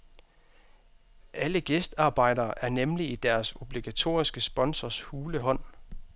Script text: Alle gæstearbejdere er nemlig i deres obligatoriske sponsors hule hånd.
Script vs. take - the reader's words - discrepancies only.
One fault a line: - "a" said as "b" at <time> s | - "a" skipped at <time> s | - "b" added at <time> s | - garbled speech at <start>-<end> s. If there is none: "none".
none